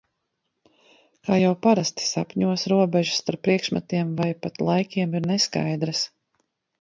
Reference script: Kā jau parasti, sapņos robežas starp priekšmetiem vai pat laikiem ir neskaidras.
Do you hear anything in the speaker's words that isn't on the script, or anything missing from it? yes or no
no